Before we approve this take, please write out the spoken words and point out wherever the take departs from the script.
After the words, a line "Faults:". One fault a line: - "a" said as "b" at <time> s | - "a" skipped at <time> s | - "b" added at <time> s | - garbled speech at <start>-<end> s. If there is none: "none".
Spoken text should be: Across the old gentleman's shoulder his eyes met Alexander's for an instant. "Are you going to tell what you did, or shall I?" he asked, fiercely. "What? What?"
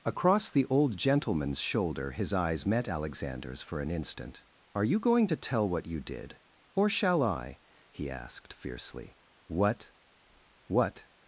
Across the old gentleman's shoulder his eyes met Alexander's for an instant. "Are you going to tell what you did, or shall I?" he asked, fiercely. "What? What?"
Faults:
none